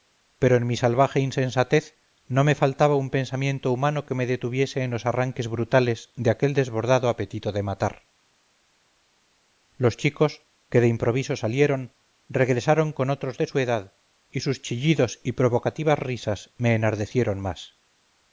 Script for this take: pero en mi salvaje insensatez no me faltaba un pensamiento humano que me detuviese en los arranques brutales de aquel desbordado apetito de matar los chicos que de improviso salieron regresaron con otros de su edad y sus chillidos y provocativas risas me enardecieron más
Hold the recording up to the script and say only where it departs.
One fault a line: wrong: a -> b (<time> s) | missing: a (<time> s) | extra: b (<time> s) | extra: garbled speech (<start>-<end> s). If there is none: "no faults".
no faults